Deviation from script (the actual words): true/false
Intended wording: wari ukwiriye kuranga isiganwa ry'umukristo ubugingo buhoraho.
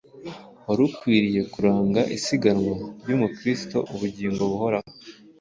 false